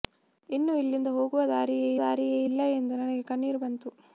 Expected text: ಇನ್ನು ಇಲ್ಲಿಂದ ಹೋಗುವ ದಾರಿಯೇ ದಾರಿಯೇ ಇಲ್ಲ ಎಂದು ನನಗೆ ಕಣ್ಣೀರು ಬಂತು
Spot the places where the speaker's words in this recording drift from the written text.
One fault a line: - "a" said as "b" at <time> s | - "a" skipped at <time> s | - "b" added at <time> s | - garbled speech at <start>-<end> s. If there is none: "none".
none